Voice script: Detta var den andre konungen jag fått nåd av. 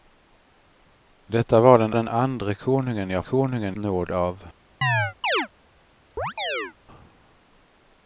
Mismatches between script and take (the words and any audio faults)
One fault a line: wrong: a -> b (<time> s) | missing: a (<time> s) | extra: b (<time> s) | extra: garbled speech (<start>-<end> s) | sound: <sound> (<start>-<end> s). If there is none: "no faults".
extra: den (1.9 s)
wrong: fått -> konungen (3.2 s)
sound: chirp (4.8-5.5 s)
sound: chirp (6.2-6.7 s)